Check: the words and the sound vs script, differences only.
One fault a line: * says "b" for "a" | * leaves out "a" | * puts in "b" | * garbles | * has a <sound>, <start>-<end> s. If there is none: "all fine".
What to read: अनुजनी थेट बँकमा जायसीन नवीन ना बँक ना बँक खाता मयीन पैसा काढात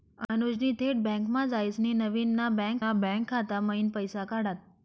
all fine